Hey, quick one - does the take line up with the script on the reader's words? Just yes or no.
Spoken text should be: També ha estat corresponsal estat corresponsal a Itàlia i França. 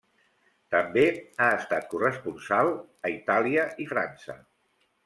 no